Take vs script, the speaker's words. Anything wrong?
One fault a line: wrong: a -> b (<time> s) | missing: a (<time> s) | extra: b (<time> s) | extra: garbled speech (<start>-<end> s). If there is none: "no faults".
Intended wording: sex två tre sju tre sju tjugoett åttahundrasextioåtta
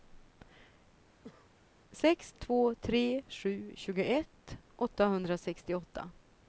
missing: tre sju (3.7 s)